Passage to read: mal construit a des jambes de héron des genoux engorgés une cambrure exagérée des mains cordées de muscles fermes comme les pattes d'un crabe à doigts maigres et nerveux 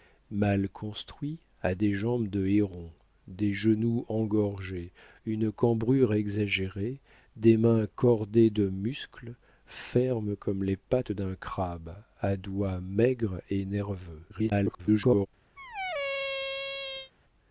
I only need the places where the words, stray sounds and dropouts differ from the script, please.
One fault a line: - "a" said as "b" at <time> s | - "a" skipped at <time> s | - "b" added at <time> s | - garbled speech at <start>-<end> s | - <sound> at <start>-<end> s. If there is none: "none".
- garbled speech at 14.3-15.3 s
- squeak at 15.6-17.1 s